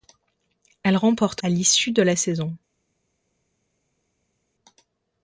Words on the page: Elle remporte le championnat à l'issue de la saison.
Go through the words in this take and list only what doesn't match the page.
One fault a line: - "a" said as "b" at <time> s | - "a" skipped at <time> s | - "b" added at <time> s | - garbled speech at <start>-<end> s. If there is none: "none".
- "le championnat" skipped at 1.4 s